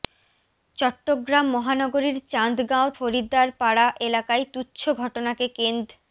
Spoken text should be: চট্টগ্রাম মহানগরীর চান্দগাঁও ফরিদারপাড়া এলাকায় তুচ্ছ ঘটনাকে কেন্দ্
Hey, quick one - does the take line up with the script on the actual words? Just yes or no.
yes